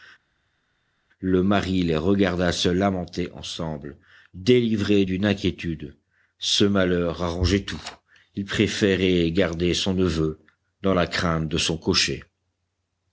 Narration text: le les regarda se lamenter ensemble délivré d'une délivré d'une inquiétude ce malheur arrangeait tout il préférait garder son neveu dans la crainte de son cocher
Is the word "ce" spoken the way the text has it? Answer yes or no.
yes